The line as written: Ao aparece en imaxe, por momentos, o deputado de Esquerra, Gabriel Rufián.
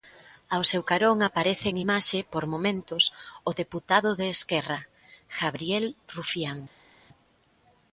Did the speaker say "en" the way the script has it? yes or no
yes